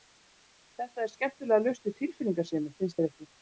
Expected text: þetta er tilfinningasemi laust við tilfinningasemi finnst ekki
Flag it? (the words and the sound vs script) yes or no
yes